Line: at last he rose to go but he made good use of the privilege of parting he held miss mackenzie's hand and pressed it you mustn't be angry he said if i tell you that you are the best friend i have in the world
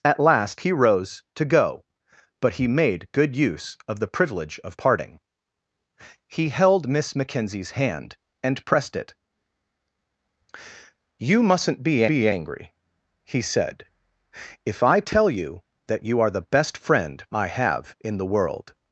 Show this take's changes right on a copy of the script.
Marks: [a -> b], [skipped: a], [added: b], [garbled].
at last he rose to go but he made good use of the privilege of parting he held miss mackenzie's hand and pressed it you mustn't be [added: be] angry he said if i tell you that you are the best friend i have in the world